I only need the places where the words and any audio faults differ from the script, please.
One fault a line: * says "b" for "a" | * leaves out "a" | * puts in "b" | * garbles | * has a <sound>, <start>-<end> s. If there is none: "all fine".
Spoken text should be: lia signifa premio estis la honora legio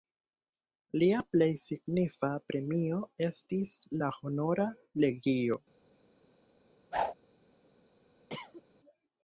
* puts in "plej"
* has a whoosh, 6.9-7.1 s
* has a cough, 8.3-8.6 s